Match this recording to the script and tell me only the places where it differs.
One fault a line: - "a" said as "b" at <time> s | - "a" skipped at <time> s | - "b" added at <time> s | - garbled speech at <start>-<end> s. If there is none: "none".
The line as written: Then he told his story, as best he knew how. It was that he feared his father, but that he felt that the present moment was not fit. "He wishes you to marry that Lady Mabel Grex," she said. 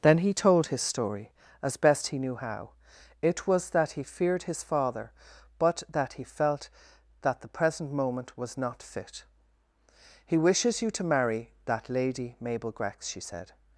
none